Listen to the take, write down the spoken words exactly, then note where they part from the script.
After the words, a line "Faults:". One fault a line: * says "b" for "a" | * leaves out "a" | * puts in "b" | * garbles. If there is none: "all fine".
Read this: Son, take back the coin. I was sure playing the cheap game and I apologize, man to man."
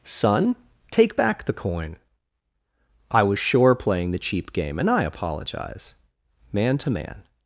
Son, take back the coin. I was sure playing the cheap game and I apologize, man to man."
Faults:
all fine